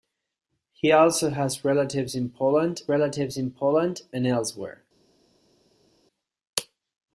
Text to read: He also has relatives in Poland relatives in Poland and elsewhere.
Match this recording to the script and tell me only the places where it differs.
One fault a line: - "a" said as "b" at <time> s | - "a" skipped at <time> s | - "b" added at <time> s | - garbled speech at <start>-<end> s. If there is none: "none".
none